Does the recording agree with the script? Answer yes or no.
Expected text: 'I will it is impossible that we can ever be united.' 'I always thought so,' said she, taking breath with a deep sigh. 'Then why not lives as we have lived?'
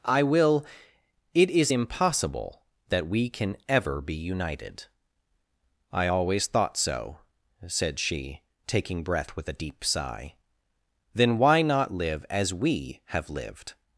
no